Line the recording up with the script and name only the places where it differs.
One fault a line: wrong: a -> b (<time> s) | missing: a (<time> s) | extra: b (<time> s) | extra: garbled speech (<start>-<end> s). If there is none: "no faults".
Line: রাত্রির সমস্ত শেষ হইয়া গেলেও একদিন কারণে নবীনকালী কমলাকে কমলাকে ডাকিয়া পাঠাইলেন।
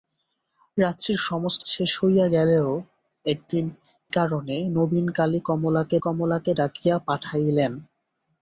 no faults